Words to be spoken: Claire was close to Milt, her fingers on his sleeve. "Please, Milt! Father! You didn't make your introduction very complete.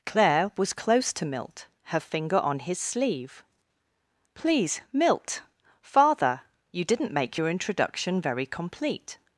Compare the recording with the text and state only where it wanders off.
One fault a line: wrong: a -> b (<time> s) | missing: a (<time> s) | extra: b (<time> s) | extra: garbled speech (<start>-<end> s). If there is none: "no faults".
wrong: fingers -> finger (2.0 s)